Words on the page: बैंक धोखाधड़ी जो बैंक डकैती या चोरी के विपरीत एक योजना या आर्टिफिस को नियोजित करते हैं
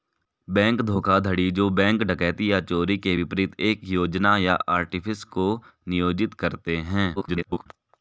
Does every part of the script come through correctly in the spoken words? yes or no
no